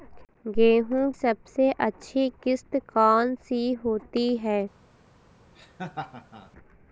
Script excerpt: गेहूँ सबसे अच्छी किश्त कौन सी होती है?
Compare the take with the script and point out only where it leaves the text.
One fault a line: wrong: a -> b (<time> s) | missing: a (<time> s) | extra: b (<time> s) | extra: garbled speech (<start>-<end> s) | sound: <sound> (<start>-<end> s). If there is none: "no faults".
sound: laugh (5.6-6.5 s)